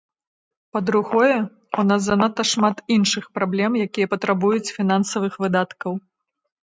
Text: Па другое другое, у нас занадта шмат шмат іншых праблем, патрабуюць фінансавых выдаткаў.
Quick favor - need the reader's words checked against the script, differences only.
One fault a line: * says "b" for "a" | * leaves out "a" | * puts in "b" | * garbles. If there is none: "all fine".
* leaves out "другое"
* leaves out "шмат"
* puts in "якія"